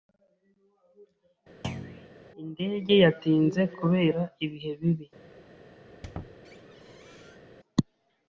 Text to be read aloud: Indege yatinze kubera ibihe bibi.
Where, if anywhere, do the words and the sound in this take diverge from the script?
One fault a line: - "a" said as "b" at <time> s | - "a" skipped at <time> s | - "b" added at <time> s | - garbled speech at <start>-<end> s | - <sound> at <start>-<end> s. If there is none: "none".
- thud at 1.6-2.1 s
- squeak at 5.9-7.4 s